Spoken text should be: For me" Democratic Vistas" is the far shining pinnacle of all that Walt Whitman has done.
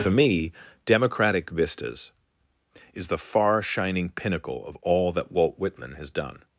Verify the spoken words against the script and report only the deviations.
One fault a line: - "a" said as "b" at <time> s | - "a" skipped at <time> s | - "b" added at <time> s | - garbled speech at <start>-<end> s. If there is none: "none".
none